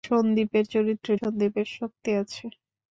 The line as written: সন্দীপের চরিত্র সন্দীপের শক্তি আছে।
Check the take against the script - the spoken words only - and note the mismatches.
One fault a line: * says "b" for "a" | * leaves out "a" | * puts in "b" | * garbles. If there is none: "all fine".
all fine